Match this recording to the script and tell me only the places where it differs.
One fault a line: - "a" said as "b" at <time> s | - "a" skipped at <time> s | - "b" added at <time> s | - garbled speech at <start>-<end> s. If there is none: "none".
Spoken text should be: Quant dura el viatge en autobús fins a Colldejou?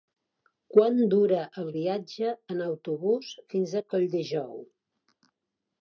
none